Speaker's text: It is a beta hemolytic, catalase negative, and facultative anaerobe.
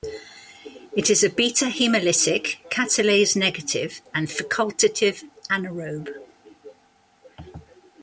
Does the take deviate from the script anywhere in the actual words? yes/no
no